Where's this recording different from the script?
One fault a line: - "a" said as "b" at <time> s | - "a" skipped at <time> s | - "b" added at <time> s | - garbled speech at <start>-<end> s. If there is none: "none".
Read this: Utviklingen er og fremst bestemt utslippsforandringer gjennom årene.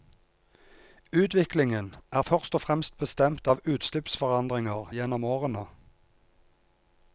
- "først" added at 2.2 s
- "av" added at 3.5 s